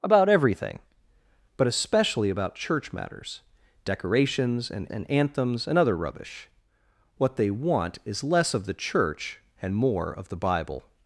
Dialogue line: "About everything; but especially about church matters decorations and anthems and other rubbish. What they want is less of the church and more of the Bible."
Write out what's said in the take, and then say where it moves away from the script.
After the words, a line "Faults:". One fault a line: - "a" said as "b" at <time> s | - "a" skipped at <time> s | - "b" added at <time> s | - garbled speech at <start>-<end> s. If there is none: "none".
"About everything; but especially about church matters decorations and and anthems and other rubbish. What they want is less of the church and more of the Bible."
Faults:
- "and" added at 4.9 s